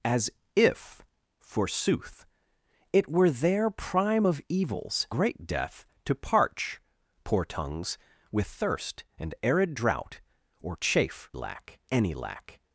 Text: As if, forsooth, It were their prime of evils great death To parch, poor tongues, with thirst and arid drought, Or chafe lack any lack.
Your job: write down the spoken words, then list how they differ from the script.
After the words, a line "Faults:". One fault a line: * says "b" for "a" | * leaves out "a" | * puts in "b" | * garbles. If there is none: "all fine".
As if, forsooth, It were their prime of evils great death To parch, poor tongues, with thirst and arid drought, Or chafe lack any lack.
Faults:
all fine